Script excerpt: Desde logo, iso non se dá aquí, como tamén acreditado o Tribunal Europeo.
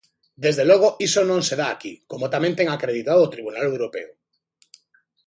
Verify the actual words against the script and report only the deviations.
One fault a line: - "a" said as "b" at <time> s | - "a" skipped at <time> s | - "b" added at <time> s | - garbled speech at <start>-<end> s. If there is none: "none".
- "ten" added at 2.6 s